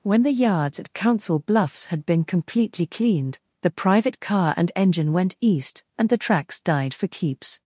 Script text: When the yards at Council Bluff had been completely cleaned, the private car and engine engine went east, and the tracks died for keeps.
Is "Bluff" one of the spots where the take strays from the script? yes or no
yes